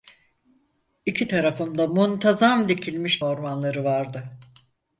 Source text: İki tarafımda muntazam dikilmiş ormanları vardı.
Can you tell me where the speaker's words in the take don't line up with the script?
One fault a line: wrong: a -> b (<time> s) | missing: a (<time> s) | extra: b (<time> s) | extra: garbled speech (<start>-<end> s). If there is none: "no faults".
no faults